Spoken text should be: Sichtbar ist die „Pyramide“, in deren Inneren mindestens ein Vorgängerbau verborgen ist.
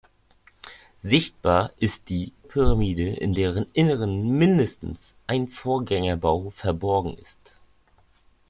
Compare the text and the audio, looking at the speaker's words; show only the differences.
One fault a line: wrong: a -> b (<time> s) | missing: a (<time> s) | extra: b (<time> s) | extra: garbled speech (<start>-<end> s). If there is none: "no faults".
no faults